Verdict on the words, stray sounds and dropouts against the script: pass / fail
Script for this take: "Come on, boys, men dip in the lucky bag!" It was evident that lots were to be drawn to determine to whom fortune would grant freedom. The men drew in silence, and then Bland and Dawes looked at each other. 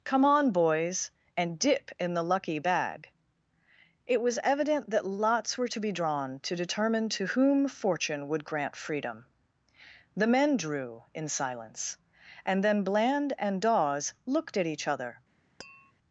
fail